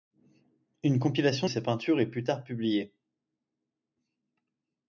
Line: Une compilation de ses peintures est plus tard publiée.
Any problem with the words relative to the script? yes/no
yes